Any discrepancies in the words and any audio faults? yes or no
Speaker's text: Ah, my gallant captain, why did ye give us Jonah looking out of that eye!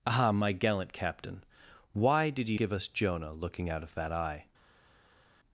no